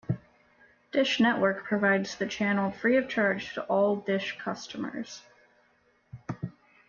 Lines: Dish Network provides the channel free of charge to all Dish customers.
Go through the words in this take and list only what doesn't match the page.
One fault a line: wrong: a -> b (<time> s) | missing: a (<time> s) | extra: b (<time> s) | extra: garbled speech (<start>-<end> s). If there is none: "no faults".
no faults